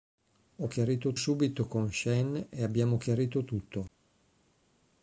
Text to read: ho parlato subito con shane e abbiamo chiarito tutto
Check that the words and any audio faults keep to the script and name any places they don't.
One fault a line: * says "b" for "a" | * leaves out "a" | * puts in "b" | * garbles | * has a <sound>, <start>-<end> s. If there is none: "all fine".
* says "chiarito" for "parlato"